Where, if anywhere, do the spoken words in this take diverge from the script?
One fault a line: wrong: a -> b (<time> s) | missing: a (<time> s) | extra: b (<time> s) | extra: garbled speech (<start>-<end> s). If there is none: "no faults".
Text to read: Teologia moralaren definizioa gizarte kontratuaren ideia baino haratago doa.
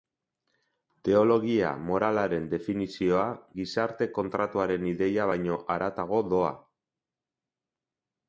no faults